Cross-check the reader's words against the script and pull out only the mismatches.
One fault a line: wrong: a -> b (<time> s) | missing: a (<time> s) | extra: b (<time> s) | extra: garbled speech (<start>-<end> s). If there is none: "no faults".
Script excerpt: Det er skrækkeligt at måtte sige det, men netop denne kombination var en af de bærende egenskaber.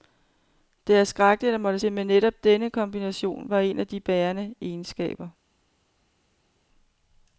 missing: sige (1.8 s)